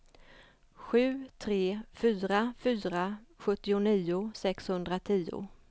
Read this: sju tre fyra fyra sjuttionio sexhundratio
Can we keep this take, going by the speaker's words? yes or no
yes